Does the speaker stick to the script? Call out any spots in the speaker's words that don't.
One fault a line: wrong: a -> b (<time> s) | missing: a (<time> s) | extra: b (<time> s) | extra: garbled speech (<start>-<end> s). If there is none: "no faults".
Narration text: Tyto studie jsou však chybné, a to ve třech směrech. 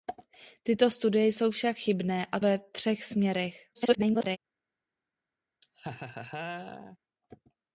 missing: to (2.4 s)
extra: garbled speech (3.7-4.4 s)